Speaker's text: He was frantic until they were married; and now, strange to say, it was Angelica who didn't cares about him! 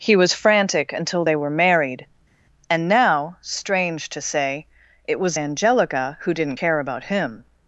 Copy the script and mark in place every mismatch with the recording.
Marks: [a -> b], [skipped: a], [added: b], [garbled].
He was frantic until they were married; and now, strange to say, it was Angelica who didn't [cares -> care] about him!